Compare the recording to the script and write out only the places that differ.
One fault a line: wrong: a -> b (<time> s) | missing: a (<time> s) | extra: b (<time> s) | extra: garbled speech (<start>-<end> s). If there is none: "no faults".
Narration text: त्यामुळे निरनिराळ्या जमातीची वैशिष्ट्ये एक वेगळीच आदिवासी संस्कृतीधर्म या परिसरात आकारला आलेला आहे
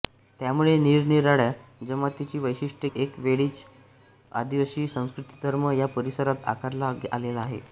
no faults